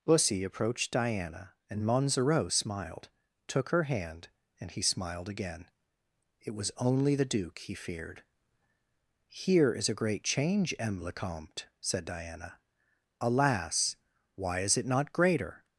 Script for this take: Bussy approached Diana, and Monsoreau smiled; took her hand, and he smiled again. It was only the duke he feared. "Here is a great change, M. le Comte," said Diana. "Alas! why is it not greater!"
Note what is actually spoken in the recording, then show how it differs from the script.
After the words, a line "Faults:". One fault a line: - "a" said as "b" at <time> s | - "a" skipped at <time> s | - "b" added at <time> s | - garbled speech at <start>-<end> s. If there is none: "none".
Bussy approached Diana, and Monsoreau smiled; took her hand, and he smiled again. It was only the duke he feared. "Here is a great change, M. le Comte," said Diana. "Alas! why is it not greater!"
Faults:
none